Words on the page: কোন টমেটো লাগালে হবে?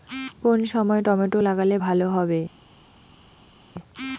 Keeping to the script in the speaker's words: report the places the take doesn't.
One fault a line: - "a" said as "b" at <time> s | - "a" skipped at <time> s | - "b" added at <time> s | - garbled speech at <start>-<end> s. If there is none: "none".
- "সময়" added at 0.7 s
- "ভালো" added at 1.8 s